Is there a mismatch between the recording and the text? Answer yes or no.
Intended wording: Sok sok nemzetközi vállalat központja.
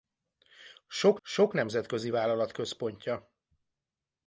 no